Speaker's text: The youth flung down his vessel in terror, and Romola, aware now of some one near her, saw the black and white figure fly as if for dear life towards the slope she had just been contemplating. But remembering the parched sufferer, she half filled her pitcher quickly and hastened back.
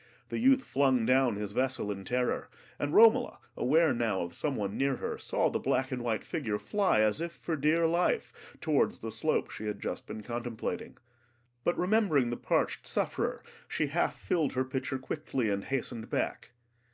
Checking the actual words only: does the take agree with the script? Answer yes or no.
yes